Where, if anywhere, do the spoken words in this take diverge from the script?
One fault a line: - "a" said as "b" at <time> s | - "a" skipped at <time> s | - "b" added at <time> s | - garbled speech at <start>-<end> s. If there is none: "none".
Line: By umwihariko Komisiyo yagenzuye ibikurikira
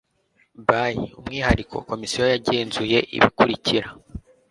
none